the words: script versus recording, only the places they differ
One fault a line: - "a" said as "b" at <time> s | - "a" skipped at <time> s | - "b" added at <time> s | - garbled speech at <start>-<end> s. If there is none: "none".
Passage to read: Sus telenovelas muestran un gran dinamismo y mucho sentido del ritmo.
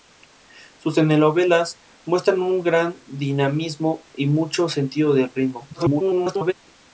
- garbled speech at 5.7-6.5 s